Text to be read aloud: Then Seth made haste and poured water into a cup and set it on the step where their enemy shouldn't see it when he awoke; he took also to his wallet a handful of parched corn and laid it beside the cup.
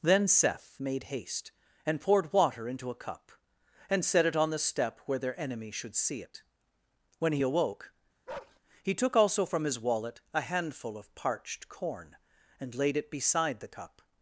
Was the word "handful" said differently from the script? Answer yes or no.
no